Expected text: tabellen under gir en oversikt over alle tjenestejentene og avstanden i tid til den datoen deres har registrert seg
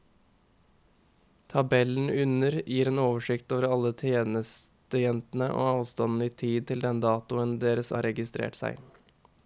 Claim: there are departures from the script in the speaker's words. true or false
false